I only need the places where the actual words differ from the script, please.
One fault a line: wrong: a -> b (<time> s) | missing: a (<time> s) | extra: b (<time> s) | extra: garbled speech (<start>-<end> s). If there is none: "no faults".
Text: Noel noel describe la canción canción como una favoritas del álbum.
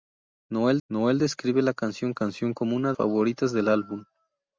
no faults